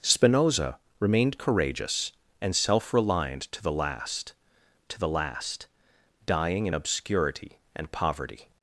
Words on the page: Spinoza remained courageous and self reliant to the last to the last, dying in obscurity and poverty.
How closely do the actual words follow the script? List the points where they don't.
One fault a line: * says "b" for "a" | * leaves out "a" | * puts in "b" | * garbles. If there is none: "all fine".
all fine